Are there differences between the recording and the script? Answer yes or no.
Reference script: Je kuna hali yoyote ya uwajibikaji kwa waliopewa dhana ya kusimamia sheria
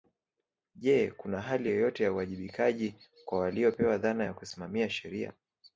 no